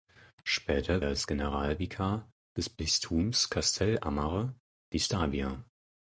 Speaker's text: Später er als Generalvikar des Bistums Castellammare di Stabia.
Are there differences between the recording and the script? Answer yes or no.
no